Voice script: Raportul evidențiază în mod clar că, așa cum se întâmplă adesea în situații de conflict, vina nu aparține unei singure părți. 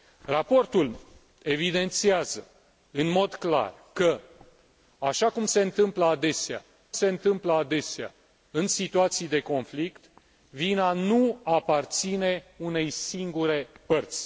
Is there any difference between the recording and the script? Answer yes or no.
yes